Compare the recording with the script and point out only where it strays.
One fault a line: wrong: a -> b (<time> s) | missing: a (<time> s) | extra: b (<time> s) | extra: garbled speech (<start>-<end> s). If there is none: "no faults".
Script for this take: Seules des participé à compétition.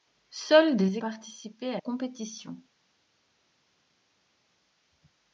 no faults